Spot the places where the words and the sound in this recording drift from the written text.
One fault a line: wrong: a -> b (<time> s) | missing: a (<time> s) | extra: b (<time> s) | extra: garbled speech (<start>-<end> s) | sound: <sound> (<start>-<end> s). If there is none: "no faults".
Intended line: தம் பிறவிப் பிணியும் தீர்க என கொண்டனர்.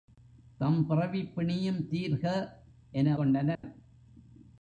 sound: dropout (3.5-3.6 s)